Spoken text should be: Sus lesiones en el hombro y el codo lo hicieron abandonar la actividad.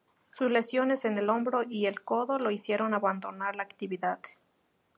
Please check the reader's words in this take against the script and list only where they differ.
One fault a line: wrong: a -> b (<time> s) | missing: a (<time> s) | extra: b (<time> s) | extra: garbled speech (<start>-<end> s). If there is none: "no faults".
no faults